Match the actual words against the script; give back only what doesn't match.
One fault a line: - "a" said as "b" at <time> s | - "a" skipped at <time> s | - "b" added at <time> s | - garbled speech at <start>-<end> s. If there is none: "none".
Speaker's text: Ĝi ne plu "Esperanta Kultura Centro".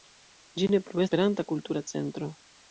none